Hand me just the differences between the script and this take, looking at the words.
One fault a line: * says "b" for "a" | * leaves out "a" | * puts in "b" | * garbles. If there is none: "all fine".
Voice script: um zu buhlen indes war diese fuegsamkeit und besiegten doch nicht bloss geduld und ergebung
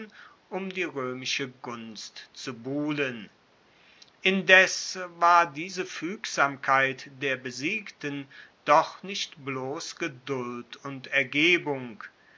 * puts in "die roemische gunst"
* says "der" for "und"